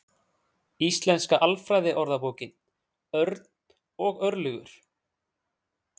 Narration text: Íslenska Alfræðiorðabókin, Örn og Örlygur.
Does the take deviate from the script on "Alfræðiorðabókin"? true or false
false